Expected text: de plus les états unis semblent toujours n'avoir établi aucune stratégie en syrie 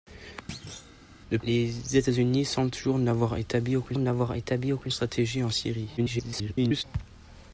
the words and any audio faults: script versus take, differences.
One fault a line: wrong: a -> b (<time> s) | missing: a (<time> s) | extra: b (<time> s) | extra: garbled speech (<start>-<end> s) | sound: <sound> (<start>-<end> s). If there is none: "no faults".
sound: thud (0.5-1.0 s)
missing: plus (1.4 s)
extra: n'avoir établi aucune (4.0 s)
extra: garbled speech (6.0-6.8 s)